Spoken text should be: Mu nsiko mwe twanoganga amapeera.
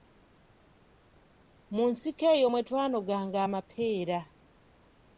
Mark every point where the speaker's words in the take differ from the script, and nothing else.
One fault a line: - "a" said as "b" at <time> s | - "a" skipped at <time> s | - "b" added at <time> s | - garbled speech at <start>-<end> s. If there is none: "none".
- "eyo" added at 2.4 s